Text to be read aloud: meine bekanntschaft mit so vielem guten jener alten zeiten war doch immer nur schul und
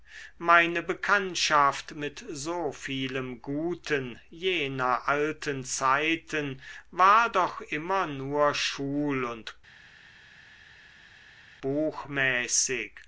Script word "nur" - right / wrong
right